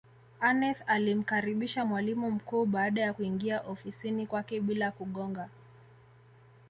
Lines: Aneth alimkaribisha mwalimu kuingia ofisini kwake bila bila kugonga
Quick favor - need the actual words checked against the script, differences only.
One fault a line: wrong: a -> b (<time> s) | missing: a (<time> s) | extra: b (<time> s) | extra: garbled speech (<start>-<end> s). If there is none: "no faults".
extra: mkuu baada ya (2.3 s)
missing: bila (4.9 s)